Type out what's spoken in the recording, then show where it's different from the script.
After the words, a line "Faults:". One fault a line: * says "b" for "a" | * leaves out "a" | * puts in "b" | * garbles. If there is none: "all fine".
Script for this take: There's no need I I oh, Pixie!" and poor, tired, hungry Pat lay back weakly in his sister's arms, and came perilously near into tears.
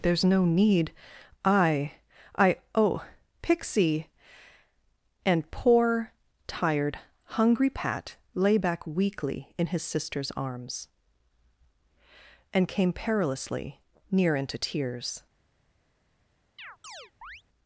There's no need I I oh, Pixie!" and poor, tired, hungry Pat lay back weakly in his sister's arms, and came perilously near into tears.
Faults:
all fine